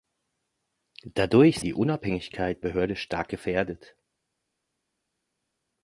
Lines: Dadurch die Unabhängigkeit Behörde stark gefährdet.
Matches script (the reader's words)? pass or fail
pass